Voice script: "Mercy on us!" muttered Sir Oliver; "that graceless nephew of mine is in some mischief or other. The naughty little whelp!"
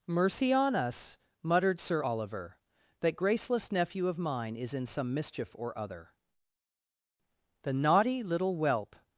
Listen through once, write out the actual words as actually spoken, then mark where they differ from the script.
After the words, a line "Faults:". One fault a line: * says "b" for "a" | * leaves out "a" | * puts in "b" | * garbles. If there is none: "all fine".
"Mercy on us!" muttered Sir Oliver; "that graceless nephew of mine is in some mischief or other. The naughty little whelp!"
Faults:
all fine